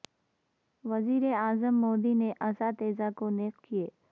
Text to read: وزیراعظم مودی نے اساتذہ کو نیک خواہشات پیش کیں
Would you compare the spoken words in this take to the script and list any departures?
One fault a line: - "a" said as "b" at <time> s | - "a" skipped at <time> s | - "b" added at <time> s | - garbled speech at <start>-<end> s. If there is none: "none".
- "خواہشات پیش" skipped at 3.5 s